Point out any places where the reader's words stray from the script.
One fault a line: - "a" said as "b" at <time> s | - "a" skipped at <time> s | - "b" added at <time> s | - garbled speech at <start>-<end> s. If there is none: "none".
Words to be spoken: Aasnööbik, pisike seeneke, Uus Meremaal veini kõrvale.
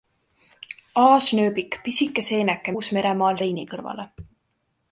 none